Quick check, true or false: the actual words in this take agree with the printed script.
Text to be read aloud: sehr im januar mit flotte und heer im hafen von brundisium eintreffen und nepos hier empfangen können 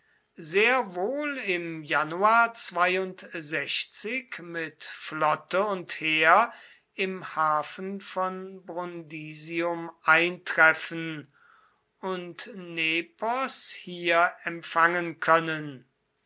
false